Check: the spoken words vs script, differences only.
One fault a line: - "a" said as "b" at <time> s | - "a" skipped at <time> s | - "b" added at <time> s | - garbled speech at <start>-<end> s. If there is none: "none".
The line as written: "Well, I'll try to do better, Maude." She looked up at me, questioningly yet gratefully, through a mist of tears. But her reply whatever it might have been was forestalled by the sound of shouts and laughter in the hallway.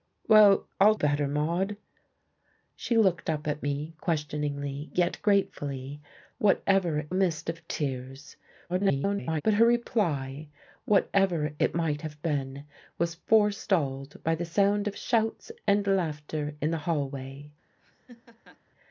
- "try to do" skipped at 0.9 s
- "through" said as "whatever" at 6.4 s
- garbled speech at 8.7-9.4 s